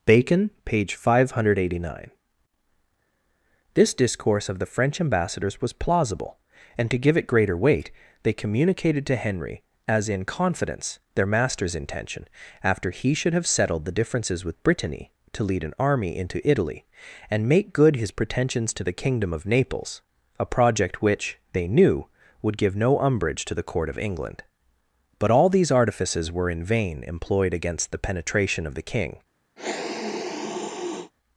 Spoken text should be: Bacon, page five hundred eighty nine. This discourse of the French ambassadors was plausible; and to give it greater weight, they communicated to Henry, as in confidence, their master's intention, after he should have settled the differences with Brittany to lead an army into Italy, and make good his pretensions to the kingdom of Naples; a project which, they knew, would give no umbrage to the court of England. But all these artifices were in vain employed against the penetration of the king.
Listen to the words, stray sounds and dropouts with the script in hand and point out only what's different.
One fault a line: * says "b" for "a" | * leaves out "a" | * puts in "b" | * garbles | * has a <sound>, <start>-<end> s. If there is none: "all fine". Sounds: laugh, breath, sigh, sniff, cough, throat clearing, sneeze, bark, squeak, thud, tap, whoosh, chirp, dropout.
* has a sniff, 29.6-31.1 s